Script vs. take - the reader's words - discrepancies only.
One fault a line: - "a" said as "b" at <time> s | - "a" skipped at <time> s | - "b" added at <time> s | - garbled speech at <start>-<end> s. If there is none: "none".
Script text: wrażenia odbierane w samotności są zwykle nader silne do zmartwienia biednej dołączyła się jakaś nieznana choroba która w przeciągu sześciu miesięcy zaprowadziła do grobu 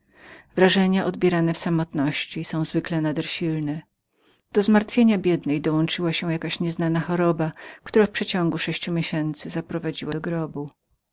none